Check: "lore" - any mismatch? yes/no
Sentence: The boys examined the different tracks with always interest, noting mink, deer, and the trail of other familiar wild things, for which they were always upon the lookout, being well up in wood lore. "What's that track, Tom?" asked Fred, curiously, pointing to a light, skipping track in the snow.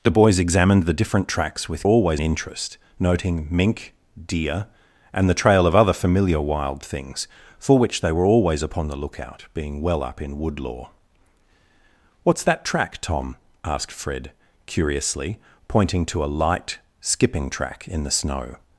no